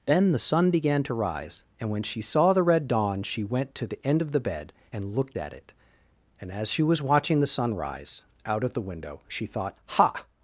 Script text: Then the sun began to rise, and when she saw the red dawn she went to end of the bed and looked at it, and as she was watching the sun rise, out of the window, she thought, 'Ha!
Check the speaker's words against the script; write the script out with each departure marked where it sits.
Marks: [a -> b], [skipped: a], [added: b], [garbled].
Then the sun began to rise, and when she saw the red dawn she went to [added: the] end of the bed and looked at it, and as she was watching the sun rise, out of the window, she thought, 'Ha!